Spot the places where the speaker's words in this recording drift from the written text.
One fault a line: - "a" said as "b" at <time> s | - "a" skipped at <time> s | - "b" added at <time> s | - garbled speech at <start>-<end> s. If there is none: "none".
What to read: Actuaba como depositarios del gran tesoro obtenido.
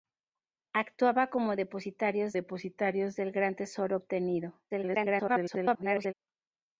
- "depositarios" added at 2.3 s
- garbled speech at 4.7-6.1 s